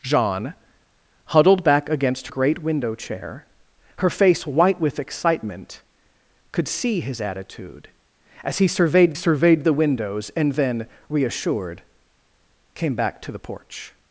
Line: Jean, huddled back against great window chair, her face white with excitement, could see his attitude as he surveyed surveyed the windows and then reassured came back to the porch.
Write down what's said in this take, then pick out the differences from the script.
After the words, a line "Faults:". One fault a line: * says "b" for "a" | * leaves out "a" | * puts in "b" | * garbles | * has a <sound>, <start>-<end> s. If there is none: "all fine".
Jean, huddled back against great window chair, her face white with excitement, could see his attitude as he surveyed surveyed the windows and then reassured came back to the porch.
Faults:
all fine